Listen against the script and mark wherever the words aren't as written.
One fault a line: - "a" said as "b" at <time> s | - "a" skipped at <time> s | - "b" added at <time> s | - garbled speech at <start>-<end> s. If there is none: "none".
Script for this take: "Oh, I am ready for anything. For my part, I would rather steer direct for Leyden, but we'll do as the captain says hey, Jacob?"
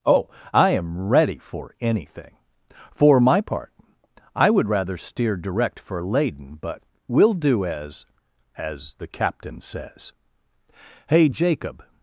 - "as" added at 8.6 s